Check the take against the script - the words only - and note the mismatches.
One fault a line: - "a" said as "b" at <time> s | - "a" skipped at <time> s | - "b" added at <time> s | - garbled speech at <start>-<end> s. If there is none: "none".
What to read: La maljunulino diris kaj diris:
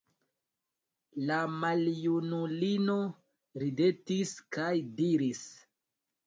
- "diris" said as "ridetis" at 3.6 s